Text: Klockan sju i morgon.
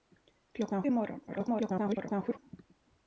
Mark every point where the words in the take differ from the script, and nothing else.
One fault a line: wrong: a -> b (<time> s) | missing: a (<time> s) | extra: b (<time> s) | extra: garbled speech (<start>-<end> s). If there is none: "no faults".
missing: sju (0.8 s)
extra: garbled speech (1.3-2.4 s)